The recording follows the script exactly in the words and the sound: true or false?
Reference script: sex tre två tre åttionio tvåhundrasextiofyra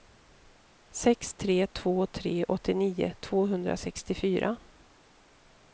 true